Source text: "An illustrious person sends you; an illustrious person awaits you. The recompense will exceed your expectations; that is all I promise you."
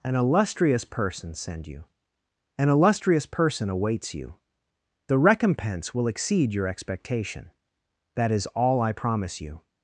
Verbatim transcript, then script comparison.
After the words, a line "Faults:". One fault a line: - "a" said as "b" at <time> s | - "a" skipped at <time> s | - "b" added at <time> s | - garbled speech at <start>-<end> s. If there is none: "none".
"An illustrious person send you; an illustrious person awaits you. The recompense will exceed your expectation; that is all I promise you."
Faults:
- "sends" said as "send" at 1.3 s
- "expectations" said as "expectation" at 6.7 s